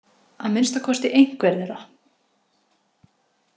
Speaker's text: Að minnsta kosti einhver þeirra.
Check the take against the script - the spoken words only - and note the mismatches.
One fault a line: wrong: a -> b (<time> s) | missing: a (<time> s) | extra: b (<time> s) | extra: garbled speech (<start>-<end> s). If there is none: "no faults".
no faults